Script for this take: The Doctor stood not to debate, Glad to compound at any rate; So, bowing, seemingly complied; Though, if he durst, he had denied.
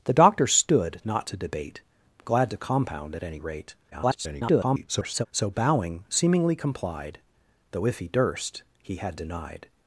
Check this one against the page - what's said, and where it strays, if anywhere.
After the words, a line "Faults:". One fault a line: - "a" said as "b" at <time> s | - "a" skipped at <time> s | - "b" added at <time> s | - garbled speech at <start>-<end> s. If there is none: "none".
The Doctor stood not to debate, Glad to compound at any rate; [garbled] So, bowing, seemingly complied; Though, if he durst, he had denied.
Faults:
- garbled speech at 3.9-5.3 s